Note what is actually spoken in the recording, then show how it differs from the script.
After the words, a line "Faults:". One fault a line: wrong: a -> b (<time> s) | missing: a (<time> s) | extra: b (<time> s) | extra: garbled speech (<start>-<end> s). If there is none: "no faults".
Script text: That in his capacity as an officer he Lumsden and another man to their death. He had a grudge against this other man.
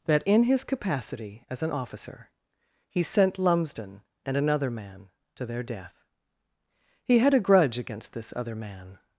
That in his capacity as an officer he sent Lumsden and another man to their death. He had a grudge against this other man.
Faults:
extra: sent (3.0 s)